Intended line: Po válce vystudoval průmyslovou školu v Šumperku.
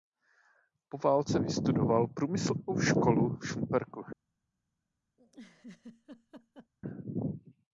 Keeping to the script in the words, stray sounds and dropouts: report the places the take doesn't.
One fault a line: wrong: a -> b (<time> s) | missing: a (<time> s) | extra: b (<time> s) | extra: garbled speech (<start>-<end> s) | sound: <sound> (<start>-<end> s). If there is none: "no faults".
sound: laugh (5.2-6.7 s)